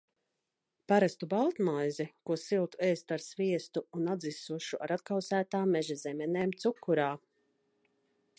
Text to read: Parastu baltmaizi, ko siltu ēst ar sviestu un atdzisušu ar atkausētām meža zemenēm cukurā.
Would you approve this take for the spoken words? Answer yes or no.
yes